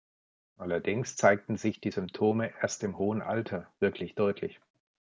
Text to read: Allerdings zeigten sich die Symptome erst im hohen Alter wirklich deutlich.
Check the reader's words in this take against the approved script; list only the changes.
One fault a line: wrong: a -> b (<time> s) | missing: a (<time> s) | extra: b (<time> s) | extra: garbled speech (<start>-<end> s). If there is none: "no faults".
no faults